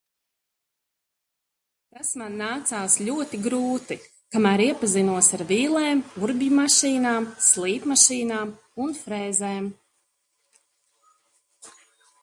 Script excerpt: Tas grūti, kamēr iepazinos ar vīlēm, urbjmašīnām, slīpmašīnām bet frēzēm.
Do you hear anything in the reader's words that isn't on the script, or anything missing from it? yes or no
yes